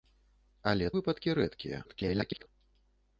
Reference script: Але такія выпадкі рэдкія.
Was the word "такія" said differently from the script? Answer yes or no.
yes